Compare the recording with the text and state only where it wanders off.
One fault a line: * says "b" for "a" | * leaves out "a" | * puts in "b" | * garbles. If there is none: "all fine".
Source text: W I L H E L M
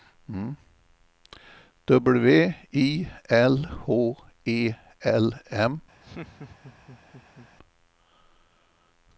all fine